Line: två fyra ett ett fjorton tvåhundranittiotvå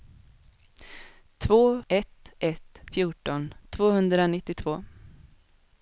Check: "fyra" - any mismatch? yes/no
yes